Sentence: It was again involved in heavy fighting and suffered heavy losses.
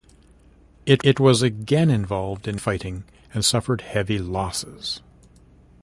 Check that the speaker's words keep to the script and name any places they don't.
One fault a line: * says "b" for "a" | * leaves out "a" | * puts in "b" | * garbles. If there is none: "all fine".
* puts in "it"
* leaves out "heavy"